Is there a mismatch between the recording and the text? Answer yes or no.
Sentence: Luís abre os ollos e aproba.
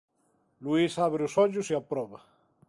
no